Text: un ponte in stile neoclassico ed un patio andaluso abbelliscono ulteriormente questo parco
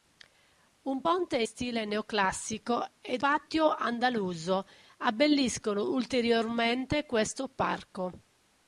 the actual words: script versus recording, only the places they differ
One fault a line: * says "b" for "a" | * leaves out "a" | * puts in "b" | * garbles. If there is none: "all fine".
* leaves out "in"
* leaves out "un"